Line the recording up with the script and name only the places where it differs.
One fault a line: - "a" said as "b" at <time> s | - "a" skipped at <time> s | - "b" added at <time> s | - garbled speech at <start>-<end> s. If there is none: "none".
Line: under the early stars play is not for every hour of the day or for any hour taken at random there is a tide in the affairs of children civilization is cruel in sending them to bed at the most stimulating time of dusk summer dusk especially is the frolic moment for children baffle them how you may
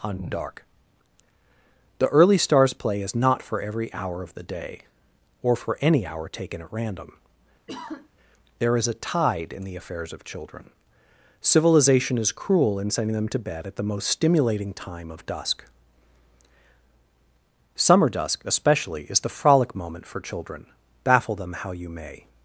- "under" said as "on dark" at 0.0 s